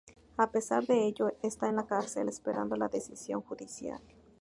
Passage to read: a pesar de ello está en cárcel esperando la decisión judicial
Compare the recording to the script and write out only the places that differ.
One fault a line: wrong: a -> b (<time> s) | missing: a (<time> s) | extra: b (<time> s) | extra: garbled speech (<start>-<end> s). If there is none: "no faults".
extra: la (1.7 s)